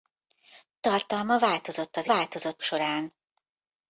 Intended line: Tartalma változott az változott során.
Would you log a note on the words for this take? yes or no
no